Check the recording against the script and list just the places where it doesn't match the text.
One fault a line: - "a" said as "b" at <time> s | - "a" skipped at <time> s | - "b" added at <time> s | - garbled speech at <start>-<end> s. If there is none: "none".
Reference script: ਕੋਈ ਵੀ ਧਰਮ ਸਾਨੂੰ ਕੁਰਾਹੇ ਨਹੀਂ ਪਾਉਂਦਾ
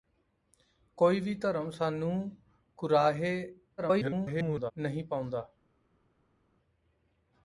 - garbled speech at 3.8-4.7 s